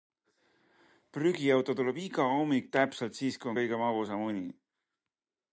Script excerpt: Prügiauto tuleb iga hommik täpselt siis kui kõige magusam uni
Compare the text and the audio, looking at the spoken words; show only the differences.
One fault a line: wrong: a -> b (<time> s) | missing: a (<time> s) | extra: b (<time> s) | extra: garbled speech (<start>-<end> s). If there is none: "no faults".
no faults